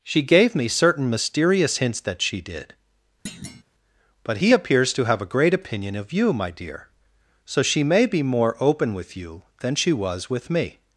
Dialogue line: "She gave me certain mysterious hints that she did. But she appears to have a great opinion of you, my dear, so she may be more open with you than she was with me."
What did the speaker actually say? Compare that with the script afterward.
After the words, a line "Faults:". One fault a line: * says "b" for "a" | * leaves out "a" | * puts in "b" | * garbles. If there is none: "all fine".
"She gave me certain mysterious hints that she did. But he appears to have a great opinion of you, my dear, so she may be more open with you than she was with me."
Faults:
* says "he" for "she"